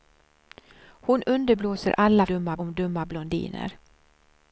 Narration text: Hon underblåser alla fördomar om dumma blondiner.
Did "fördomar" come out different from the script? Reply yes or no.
yes